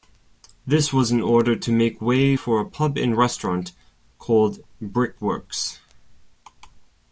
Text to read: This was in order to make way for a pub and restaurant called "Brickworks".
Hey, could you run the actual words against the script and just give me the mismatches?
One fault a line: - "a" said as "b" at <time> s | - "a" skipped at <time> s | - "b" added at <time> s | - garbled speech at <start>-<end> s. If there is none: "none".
none